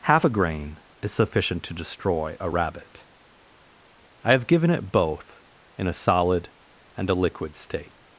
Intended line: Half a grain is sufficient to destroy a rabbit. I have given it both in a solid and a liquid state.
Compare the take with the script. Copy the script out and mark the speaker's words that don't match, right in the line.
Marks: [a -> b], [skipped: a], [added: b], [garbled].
Half a grain is sufficient to destroy a rabbit. I have given it both in a solid and a liquid state.